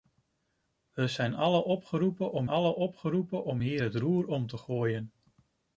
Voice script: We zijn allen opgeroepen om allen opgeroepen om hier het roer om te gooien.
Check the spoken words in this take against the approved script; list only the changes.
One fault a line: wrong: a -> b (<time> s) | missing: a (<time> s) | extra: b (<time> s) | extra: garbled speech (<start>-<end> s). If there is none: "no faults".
no faults